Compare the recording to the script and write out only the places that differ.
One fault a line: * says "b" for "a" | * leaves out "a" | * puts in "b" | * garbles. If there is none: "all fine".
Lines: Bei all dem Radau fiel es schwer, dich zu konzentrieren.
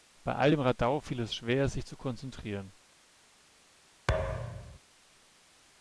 * says "sich" for "dich"